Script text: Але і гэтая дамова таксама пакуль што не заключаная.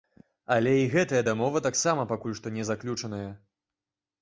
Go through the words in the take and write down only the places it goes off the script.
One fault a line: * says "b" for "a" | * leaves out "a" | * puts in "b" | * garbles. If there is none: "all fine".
all fine